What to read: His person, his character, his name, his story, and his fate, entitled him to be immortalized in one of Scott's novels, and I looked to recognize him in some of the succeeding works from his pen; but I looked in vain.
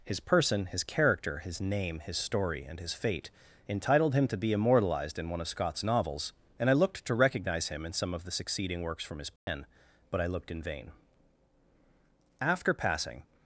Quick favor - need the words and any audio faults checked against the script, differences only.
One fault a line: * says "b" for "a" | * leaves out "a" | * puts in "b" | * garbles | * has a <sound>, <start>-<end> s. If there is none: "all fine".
* has a dropout, 9.4-9.5 s
* puts in "After passing"